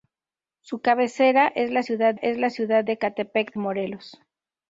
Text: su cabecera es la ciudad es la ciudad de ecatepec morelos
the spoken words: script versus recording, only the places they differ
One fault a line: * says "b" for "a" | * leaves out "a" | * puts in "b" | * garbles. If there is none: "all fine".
all fine